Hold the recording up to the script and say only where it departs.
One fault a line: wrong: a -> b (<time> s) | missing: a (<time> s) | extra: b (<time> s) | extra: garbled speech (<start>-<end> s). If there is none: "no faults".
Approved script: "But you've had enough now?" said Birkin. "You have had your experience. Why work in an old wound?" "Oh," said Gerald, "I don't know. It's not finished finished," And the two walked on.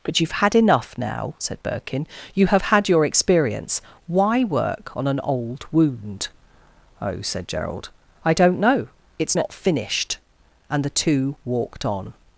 wrong: in -> on (4.9 s)
missing: finished (10.2 s)